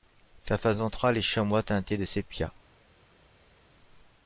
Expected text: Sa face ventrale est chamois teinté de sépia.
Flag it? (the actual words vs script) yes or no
no